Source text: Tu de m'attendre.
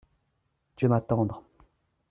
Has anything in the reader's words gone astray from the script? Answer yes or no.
no